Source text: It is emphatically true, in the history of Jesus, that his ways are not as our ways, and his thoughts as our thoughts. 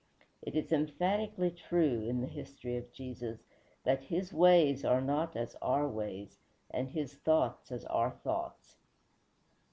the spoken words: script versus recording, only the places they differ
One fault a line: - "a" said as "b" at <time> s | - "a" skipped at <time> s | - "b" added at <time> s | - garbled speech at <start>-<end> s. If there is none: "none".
none